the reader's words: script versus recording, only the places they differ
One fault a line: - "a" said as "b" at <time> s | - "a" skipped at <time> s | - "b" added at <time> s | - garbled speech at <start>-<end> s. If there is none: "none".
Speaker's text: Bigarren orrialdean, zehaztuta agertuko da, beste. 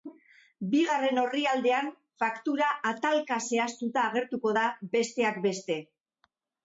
- "faktura atalka" added at 2.2 s
- "besteak" added at 5.0 s